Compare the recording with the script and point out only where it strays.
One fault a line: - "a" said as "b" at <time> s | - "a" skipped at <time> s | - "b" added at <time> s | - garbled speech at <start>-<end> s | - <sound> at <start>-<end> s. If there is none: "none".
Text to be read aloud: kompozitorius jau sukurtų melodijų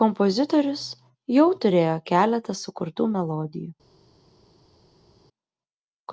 - "turėjo keletą" added at 1.6 s